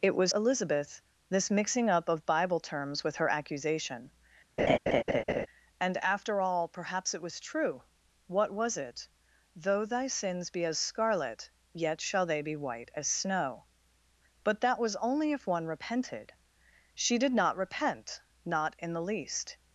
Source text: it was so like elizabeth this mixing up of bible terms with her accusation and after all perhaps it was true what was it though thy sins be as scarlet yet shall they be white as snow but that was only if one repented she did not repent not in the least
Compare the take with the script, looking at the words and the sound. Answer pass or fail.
fail